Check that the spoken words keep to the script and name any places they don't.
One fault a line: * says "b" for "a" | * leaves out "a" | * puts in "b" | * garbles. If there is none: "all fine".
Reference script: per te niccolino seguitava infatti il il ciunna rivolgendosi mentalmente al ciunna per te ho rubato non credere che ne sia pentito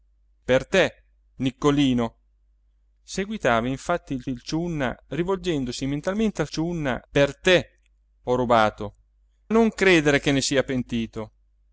all fine